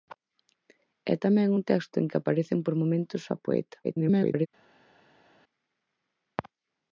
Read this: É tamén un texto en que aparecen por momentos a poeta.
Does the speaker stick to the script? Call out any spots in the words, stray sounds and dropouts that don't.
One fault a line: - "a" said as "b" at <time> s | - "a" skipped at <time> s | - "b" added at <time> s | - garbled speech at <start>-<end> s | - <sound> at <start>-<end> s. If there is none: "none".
- garbled speech at 3.8-4.5 s